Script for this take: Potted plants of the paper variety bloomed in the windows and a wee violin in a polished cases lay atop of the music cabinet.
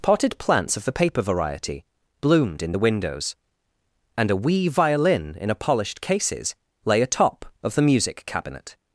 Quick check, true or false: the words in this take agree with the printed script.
true